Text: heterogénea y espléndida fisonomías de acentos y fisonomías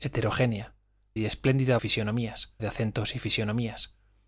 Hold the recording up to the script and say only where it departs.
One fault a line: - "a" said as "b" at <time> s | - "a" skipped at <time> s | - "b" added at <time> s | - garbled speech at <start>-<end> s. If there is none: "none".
none